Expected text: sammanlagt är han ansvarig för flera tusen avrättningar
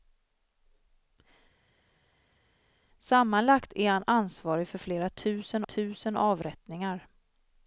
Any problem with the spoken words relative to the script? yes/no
yes